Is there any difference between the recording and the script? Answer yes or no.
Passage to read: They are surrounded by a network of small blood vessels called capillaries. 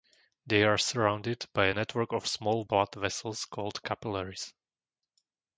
no